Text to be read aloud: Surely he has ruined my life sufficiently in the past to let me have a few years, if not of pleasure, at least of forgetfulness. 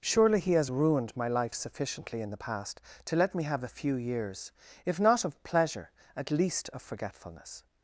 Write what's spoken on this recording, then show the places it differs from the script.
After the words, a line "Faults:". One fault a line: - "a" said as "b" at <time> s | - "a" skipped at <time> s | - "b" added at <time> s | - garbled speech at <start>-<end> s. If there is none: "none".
Surely he has ruined my life sufficiently in the past to let me have a few years, if not of pleasure, at least of forgetfulness.
Faults:
none